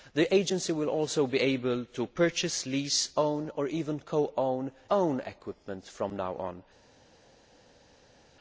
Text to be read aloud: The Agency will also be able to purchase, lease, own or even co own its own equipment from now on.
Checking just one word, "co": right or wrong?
right